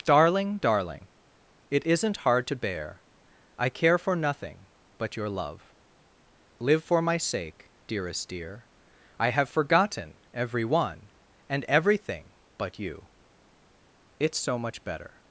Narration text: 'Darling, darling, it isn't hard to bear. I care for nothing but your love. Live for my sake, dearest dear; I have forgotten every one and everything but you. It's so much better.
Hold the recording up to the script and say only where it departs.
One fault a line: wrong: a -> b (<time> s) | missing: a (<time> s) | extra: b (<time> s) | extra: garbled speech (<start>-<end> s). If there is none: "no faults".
no faults